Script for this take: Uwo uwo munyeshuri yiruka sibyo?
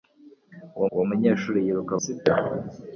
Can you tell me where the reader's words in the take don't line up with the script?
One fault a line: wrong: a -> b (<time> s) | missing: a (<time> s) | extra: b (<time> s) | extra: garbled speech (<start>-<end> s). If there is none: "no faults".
no faults